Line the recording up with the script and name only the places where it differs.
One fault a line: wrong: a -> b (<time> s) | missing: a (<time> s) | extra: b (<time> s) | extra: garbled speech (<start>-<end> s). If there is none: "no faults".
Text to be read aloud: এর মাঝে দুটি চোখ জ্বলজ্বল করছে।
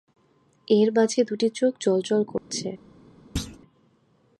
no faults